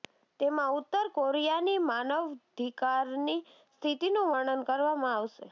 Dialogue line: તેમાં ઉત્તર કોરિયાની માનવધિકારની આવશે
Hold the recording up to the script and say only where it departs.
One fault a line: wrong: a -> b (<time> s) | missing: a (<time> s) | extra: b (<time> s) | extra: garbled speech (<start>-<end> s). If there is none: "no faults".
extra: સ્થિતિનું વર્ણન કરવામાં (3.7 s)